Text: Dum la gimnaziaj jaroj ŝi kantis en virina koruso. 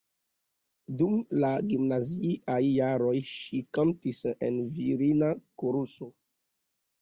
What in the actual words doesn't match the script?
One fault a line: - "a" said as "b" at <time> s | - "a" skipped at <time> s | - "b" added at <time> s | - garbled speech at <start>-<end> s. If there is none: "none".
none